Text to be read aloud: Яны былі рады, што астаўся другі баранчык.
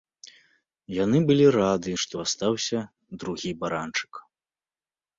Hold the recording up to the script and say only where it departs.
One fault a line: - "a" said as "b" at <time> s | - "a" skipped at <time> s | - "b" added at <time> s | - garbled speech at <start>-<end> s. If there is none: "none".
none